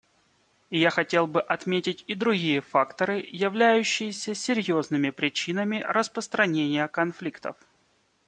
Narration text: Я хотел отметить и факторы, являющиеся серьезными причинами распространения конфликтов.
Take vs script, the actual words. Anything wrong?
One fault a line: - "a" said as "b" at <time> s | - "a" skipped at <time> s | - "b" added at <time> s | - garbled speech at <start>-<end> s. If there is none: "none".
- "бы" added at 1.3 s
- "другие" added at 2.1 s